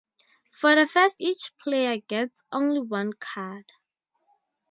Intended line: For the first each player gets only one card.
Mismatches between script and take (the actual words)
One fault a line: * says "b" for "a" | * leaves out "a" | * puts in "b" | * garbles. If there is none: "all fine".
all fine